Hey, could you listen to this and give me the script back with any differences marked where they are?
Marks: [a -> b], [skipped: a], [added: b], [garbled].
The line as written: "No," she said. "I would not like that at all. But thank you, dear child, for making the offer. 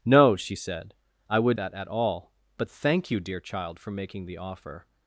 "No," she said. "I would [skipped: not like] that at all. But thank you, dear child, for making the offer.